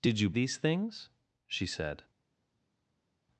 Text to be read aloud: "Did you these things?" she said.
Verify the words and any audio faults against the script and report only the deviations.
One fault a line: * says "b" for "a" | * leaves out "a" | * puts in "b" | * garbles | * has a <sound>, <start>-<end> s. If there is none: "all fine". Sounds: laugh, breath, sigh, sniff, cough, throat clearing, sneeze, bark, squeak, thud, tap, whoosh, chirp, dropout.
all fine